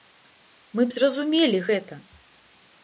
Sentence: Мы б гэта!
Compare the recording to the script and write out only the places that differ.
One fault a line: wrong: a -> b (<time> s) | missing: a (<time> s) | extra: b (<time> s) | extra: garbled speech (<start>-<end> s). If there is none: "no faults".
extra: зразумелі (1.0 s)